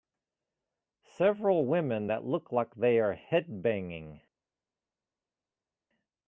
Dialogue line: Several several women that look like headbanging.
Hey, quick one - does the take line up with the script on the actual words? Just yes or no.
no